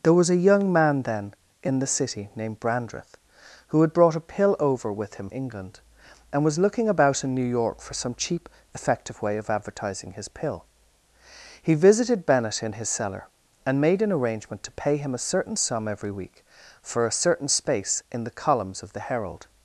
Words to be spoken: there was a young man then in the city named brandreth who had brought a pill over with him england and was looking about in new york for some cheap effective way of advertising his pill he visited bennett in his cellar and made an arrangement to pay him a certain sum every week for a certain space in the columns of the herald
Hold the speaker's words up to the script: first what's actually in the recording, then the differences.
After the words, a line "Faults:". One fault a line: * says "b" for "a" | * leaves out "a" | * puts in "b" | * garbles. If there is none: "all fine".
there was a young man then in the city named brandreth who had brought a pill over with him england and was looking about in new york for some cheap effective way of advertising his pill he visited bennett in his cellar and made an arrangement to pay him a certain sum every week for a certain space in the columns of the herald
Faults:
all fine